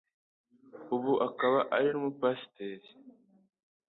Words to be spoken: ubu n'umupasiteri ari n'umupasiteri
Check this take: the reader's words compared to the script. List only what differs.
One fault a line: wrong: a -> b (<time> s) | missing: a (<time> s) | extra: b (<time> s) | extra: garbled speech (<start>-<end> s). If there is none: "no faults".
wrong: n'umupasiteri -> akaba (1.3 s)